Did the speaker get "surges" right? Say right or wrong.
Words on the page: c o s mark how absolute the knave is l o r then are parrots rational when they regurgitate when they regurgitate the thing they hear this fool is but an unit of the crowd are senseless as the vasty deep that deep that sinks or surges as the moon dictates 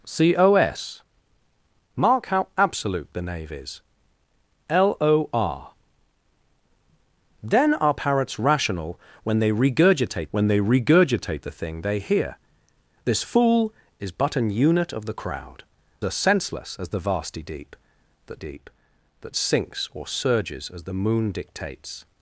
right